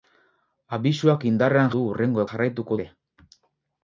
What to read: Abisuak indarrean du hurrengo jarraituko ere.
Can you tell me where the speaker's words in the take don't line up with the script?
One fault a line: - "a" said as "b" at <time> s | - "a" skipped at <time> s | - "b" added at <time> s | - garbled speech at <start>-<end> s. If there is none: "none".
none